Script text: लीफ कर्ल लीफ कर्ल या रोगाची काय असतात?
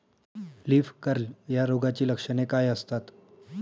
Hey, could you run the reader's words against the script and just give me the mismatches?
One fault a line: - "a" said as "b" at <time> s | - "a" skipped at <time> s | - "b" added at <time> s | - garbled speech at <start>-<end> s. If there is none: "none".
- "लीफ कर्ल" skipped at 1.5 s
- "लक्षणे" added at 2.1 s